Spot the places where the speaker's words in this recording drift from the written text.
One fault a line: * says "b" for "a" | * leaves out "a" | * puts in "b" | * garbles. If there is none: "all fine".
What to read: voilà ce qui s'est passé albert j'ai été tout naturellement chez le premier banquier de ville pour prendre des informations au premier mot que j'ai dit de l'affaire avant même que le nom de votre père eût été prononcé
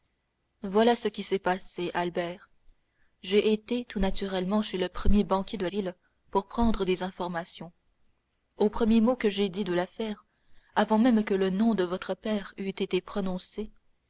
all fine